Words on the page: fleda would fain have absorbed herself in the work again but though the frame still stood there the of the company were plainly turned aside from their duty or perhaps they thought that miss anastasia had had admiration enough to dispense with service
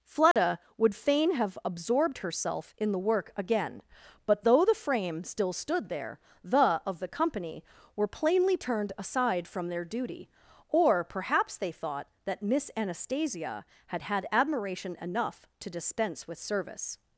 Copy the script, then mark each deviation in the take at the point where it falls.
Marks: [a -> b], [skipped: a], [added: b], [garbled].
fleda would fain have absorbed herself in the work again but though the frame still stood there the of the company were plainly turned aside from their duty or perhaps they thought that miss anastasia had had admiration enough to dispense with service